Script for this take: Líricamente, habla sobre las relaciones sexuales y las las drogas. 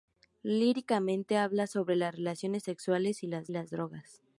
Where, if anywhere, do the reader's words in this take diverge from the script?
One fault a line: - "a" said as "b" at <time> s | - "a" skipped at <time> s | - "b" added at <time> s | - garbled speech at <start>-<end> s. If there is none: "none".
none